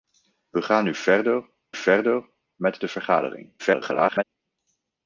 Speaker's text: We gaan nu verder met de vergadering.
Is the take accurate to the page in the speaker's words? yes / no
no